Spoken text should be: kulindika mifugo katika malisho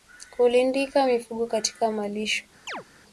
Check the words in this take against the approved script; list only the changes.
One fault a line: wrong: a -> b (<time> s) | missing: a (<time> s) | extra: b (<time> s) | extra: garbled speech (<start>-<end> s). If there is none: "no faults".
no faults